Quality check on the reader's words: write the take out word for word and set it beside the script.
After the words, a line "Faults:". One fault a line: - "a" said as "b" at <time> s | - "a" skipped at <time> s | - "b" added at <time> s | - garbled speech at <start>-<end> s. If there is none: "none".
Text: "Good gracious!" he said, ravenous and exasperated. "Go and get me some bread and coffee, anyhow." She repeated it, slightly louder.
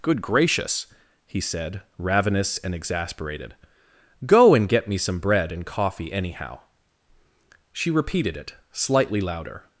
"Good gracious!" he said, ravenous and exasperated. "Go and get me some bread and coffee, anyhow." She repeated it, slightly louder.
Faults:
none